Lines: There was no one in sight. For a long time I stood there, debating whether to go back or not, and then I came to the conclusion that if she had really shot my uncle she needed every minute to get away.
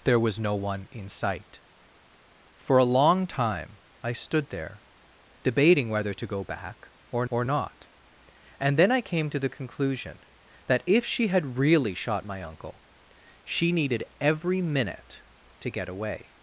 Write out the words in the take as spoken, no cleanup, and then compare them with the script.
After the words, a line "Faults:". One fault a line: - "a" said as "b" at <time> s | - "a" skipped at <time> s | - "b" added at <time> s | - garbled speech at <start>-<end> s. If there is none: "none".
There was no one in sight. For a long time I stood there, debating whether to go back or or not, and then I came to the conclusion that if she had really shot my uncle she needed every minute to get away.
Faults:
- "or" added at 7.3 s